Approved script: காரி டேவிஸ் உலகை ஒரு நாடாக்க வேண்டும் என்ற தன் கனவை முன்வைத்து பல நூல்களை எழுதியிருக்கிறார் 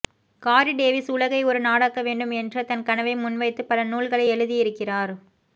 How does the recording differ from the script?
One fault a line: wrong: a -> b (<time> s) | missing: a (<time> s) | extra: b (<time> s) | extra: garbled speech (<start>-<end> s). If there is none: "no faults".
no faults